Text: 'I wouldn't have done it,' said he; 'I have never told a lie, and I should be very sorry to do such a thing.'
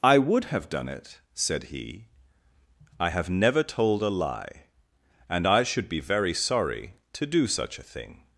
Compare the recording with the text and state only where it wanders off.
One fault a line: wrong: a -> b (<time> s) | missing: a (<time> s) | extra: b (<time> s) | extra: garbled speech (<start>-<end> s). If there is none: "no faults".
wrong: wouldn't -> would (0.2 s)